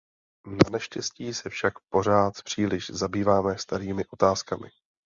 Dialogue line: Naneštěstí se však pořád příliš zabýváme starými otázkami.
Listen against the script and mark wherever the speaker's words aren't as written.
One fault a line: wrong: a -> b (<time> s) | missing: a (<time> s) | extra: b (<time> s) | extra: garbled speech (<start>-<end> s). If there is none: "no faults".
no faults